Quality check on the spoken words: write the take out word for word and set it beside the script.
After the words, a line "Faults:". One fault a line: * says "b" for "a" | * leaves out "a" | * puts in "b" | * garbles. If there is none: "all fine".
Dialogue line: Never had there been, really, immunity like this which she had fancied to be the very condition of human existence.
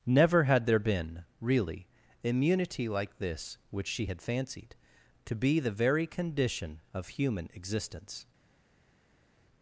Never had there been, really, immunity like this which she had fancied to be the very condition of human existence.
Faults:
all fine